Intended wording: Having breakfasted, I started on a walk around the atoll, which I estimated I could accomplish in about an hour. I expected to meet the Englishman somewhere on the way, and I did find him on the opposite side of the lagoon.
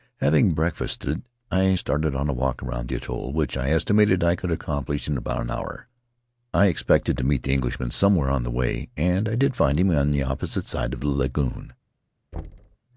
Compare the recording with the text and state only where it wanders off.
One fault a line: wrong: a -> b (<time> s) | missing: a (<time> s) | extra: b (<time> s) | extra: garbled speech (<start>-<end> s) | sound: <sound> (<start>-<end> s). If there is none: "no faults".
sound: thud (12.3-12.8 s)